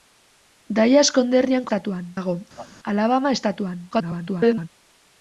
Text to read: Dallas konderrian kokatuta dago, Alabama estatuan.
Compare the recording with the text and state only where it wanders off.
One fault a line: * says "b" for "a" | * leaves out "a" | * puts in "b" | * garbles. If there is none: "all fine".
* says "estatuan" for "kokatuta"
* garbles